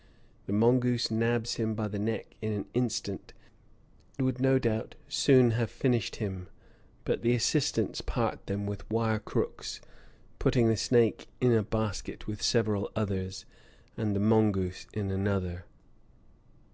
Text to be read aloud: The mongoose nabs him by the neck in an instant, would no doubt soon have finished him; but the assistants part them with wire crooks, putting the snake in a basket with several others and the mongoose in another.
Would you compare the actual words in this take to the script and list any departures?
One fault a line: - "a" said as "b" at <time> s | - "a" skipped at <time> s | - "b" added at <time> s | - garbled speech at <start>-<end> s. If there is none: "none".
none